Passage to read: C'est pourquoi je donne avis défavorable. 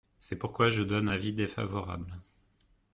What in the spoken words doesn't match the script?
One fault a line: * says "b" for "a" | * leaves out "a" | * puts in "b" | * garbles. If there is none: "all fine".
all fine